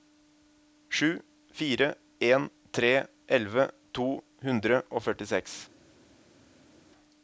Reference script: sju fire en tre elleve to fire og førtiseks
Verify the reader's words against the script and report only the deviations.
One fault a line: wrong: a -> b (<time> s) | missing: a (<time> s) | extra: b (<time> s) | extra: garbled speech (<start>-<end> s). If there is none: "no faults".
wrong: fire -> hundre (4.5 s)